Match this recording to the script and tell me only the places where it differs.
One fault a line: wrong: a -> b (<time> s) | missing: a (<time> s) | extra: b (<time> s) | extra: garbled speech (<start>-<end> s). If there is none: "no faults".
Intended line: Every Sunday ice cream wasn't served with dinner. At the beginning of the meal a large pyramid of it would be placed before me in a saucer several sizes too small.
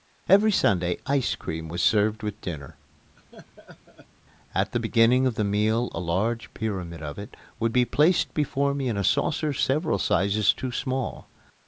wrong: wasn't -> was (1.7 s)